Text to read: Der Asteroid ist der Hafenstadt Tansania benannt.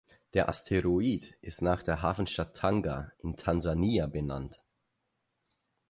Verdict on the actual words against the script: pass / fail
fail